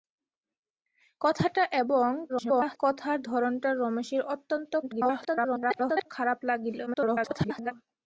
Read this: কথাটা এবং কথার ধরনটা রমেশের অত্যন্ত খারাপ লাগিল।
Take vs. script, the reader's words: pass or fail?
fail